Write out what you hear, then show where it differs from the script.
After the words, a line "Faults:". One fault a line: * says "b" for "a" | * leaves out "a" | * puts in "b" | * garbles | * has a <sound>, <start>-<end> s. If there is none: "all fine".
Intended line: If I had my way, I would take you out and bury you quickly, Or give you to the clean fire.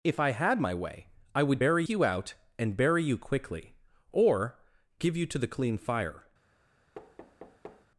If I had my way, I would bury you out and bury you quickly, Or give you to the clean fire.
Faults:
* says "bury" for "take"
* has a thud, 6.9-7.9 s